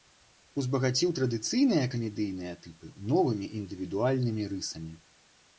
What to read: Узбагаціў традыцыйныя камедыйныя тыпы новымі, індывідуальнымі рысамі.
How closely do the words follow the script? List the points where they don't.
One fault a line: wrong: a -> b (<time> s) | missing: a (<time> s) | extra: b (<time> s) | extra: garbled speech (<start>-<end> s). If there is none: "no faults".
no faults